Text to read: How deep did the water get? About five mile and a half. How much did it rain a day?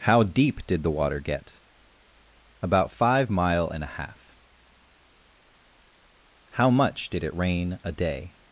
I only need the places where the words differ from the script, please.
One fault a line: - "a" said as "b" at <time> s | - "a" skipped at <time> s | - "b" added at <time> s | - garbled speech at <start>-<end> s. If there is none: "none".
none